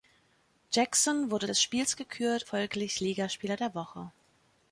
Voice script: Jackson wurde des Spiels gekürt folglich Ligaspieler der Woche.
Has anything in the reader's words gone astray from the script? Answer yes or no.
no